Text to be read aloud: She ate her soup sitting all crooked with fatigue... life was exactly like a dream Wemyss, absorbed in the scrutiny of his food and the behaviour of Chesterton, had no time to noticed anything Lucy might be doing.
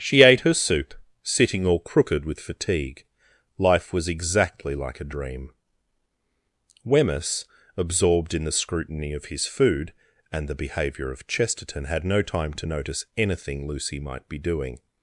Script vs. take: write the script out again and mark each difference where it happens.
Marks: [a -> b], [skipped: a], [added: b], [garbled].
She ate her soup sitting all crooked with fatigue... life was exactly like a dream Wemyss, absorbed in the scrutiny of his food and the behaviour of Chesterton, had no time to [noticed -> notice] anything Lucy might be doing.